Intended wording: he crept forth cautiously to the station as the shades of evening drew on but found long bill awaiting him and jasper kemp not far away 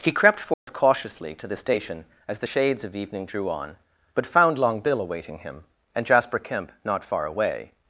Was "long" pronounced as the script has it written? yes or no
yes